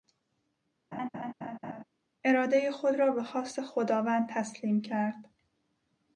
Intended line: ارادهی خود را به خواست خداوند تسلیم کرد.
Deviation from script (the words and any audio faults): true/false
true